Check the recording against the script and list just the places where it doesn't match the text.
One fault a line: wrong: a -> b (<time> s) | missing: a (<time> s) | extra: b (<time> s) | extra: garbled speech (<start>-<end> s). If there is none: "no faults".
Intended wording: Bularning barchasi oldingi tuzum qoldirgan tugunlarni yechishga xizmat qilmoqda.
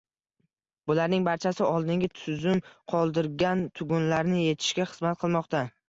no faults